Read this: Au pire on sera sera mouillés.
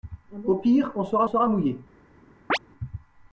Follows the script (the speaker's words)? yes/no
yes